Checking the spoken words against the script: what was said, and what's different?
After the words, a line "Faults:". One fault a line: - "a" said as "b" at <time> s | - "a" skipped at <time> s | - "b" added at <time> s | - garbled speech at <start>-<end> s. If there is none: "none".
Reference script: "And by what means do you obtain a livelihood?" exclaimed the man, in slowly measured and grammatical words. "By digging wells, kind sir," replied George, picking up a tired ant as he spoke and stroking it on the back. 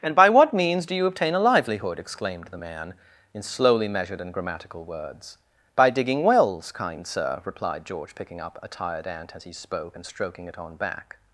"And by what means do you obtain a livelihood?" exclaimed the man, in slowly measured and grammatical words. "By digging wells, kind sir," replied George, picking up a tired ant as he spoke and stroking it on back.
Faults:
- "the" skipped at 10.7 s